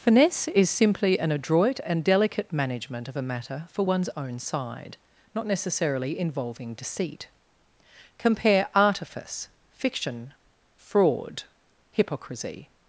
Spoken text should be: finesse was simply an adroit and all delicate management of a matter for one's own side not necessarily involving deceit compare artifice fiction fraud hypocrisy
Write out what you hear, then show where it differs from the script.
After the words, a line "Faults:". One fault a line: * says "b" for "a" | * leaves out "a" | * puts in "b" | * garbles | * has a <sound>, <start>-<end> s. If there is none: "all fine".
finesse is simply an adroit and delicate management of a matter for one's own side not necessarily involving deceit compare artifice fiction fraud hypocrisy
Faults:
* says "is" for "was"
* leaves out "all"